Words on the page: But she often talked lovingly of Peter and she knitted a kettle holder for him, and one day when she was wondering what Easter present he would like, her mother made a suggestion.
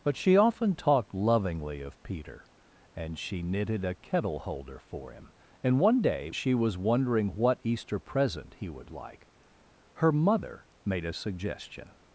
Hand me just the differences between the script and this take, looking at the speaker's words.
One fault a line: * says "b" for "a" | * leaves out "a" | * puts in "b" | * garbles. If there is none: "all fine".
* leaves out "when"